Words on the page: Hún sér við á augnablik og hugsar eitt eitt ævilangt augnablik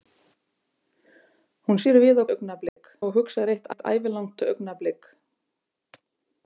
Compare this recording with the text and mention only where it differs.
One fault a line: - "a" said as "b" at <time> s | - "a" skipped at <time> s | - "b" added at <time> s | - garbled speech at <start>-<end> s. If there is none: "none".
none